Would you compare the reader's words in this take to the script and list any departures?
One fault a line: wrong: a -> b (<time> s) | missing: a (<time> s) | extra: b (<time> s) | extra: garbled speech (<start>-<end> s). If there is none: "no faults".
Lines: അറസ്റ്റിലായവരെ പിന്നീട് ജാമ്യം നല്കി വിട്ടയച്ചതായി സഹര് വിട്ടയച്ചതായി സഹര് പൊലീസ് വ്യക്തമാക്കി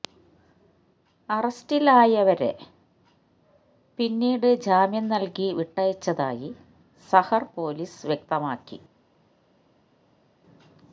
missing: വിട്ടയച്ചതായി സഹര് (7.5 s)